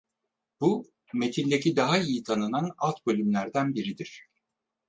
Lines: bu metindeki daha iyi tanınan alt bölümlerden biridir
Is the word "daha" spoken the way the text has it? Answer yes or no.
yes